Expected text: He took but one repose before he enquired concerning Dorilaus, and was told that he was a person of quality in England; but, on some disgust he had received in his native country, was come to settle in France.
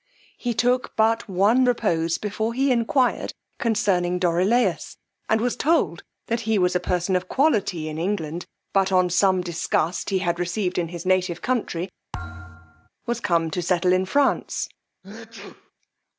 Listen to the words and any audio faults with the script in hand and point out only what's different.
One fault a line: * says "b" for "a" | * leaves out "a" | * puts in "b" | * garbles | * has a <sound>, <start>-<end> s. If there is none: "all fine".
* has a thud, 12.1-12.9 s
* has a sneeze, 15.0-15.7 s